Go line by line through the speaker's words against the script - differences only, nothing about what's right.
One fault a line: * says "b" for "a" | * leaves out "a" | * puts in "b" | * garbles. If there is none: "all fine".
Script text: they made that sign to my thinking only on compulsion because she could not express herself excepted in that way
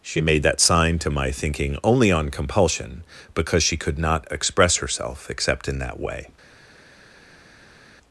* says "she" for "they"
* says "except" for "excepted"